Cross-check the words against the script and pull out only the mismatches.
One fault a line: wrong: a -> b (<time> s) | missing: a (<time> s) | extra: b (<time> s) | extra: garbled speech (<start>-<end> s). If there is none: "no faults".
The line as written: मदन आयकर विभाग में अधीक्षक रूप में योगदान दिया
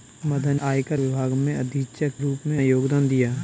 no faults